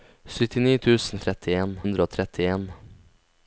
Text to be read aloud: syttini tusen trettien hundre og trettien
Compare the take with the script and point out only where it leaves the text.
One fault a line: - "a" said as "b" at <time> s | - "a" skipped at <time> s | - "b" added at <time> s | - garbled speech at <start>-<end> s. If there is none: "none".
none